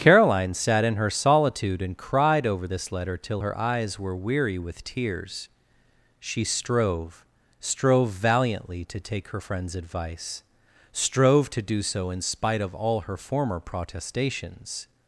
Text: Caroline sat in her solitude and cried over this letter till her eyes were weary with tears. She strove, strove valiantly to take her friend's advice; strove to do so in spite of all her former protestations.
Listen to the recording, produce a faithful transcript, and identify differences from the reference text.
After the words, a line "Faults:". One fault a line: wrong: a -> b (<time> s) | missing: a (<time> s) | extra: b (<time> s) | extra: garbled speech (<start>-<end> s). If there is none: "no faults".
Caroline sat in her solitude and cried over this letter till her eyes were weary with tears. She strove, strove valiantly to take her friend's advice; strove to do so in spite of all her former protestations.
Faults:
no faults